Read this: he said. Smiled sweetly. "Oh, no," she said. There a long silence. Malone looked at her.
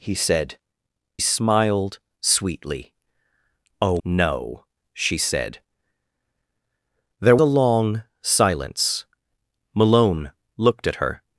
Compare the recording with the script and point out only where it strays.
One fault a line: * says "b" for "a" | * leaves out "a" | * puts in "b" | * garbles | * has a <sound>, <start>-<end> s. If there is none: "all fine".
all fine